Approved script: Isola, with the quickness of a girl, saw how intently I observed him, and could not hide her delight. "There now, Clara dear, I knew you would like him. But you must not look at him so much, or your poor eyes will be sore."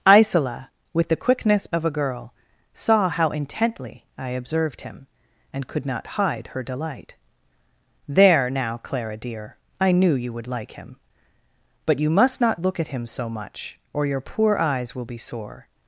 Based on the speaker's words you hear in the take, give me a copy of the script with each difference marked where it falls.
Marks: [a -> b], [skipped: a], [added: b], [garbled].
Isola, with the quickness of a girl, saw how intently I observed him, and could not hide her delight. "There now, Clara dear, I knew you would like him. But you must not look at him so much, or your poor eyes will be sore."